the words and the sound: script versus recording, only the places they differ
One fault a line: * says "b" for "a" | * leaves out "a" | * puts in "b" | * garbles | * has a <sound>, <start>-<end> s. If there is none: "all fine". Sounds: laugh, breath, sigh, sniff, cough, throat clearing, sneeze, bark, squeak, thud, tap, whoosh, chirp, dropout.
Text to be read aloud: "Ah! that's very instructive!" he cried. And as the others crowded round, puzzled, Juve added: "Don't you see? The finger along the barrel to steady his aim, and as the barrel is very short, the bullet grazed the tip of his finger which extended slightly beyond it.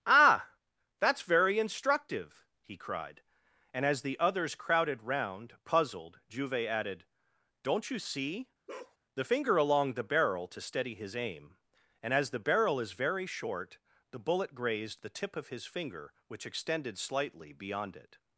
* has a bark, 8.7-9.0 s